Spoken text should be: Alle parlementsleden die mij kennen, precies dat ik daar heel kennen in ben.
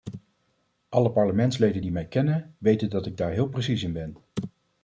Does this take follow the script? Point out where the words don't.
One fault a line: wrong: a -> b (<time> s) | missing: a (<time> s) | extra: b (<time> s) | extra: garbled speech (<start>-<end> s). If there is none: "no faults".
wrong: precies -> weten (2.6 s)
wrong: kennen -> precies (3.5 s)